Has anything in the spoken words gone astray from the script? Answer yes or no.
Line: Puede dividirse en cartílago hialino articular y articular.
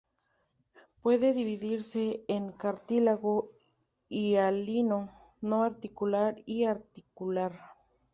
yes